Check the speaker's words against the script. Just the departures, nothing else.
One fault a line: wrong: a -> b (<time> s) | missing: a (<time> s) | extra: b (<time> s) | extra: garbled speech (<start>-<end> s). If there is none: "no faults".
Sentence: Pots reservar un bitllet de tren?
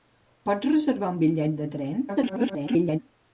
extra: garbled speech (2.1-3.0 s)